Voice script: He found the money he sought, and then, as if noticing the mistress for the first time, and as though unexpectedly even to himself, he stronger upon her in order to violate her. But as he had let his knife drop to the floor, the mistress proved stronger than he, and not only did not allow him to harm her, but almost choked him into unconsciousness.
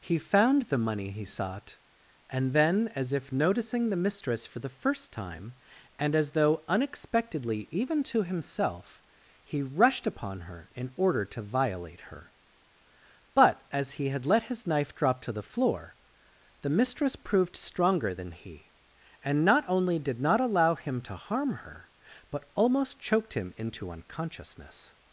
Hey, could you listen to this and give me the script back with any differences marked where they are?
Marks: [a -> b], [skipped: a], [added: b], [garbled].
He found the money he sought, and then, as if noticing the mistress for the first time, and as though unexpectedly even to himself, he [stronger -> rushed] upon her in order to violate her. But as he had let his knife drop to the floor, the mistress proved stronger than he, and not only did not allow him to harm her, but almost choked him into unconsciousness.